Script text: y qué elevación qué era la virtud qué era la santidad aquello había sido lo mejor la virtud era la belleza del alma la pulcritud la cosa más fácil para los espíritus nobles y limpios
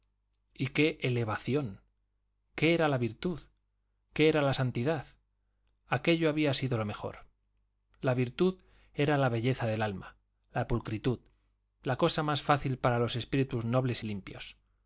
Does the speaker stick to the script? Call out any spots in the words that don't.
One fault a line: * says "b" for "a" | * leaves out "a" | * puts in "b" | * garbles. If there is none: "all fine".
all fine